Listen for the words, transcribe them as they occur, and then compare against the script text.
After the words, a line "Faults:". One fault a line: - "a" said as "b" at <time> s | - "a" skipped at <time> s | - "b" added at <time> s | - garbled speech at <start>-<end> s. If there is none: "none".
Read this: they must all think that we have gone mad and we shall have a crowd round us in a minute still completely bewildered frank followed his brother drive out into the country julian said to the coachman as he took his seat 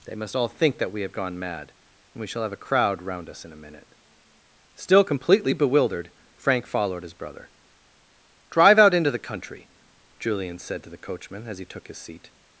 they must all think that we have gone mad and we shall have a crowd round us in a minute still completely bewildered frank followed his brother drive out into the country julian said to the coachman as he took his seat
Faults:
none